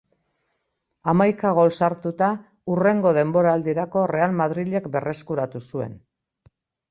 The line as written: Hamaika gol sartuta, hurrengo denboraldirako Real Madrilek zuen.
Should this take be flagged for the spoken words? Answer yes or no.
yes